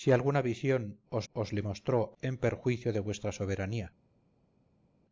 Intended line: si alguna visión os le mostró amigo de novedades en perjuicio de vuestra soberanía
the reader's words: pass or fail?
fail